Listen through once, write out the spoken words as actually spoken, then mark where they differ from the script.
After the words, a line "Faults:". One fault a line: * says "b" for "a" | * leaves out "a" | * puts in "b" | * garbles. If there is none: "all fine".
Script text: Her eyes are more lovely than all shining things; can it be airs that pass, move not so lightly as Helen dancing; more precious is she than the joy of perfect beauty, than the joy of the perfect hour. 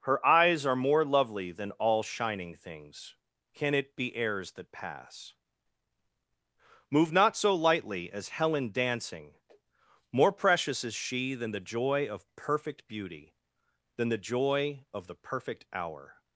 Her eyes are more lovely than all shining things; can it be airs that pass, move not so lightly as Helen dancing; more precious is she than the joy of perfect beauty, than the joy of the perfect hour.
Faults:
all fine